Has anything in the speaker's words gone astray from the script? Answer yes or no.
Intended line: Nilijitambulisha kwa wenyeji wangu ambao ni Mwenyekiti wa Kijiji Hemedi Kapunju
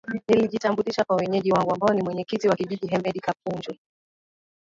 no